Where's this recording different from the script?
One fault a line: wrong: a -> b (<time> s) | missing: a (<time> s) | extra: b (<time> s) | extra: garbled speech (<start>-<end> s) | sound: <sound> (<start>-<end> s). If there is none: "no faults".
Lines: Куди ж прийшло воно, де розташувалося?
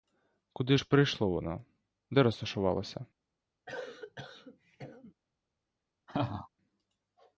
sound: cough (3.7-5.1 s)
sound: laugh (6.1-6.5 s)